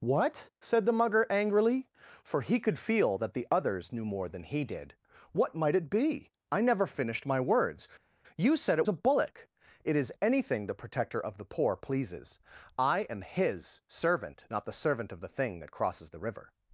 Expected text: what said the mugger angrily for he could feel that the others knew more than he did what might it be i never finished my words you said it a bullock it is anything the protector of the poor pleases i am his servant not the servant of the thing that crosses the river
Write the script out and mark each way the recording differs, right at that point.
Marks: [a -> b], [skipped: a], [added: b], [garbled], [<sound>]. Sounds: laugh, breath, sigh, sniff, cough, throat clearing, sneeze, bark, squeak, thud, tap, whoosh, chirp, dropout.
what said the mugger angrily for he could feel that the others knew more than he did what might it be i never finished my words you said it a bullock it is anything the protector of the poor pleases i am his servant not the servant of the thing that crosses the river